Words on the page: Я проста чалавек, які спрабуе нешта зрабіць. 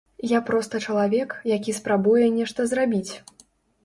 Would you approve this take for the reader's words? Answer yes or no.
yes